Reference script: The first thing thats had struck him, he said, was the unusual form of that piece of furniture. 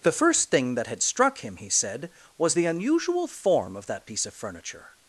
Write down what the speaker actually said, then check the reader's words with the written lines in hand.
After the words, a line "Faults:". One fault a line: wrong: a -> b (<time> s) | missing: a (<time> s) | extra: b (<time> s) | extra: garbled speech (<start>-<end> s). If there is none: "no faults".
The first thing that had struck him, he said, was the unusual form of that piece of furniture.
Faults:
wrong: thats -> that (0.7 s)